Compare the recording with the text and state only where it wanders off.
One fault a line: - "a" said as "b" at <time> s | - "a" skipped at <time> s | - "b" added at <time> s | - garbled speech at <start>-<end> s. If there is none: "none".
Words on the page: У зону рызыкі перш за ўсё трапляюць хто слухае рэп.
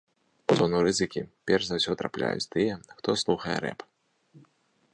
- "тыя" added at 2.5 s